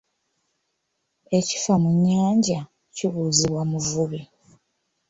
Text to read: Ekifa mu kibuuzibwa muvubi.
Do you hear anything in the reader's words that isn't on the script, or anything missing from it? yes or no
yes